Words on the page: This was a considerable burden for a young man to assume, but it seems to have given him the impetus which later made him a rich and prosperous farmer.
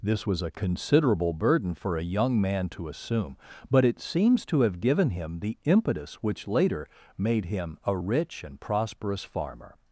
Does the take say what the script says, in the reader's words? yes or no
yes